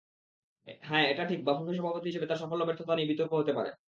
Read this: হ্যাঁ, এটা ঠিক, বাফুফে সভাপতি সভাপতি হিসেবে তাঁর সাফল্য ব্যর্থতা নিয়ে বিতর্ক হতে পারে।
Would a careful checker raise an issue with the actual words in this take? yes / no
yes